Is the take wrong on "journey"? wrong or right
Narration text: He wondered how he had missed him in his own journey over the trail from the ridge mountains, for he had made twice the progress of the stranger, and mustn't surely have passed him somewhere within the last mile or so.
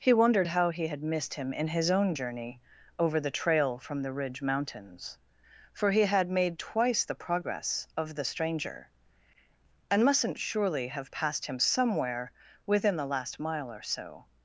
right